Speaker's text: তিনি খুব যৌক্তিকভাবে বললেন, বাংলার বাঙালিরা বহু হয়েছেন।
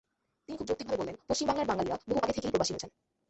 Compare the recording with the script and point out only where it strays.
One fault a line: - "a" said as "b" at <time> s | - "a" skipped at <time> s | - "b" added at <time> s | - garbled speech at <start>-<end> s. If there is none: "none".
- "পশ্চিম" added at 1.3 s
- "আগে থেকেই প্রবাসী" added at 2.2 s